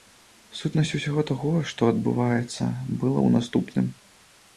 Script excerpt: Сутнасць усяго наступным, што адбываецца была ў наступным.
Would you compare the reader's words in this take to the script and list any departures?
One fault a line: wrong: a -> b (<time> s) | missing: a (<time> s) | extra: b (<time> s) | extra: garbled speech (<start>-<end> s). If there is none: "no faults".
wrong: наступным -> таго (1.3 s)